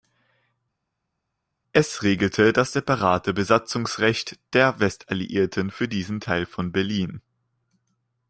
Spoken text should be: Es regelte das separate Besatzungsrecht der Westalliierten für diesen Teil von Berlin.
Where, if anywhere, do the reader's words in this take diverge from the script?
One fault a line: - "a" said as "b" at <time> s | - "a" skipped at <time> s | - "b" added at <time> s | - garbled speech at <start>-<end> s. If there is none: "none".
none